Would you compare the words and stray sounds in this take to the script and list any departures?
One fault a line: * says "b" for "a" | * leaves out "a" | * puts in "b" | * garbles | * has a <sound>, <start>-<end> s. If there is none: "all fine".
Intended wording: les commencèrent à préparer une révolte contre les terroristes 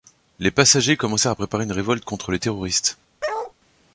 * puts in "passagers"
* has a bark, 3.2-3.5 s